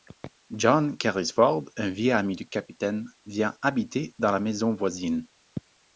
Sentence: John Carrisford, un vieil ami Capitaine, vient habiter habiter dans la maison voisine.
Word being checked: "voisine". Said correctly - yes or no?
yes